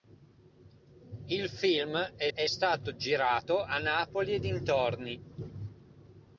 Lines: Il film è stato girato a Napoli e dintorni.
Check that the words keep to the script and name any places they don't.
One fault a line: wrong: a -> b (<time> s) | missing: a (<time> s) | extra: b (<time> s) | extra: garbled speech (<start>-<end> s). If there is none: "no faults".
extra: è (2.3 s)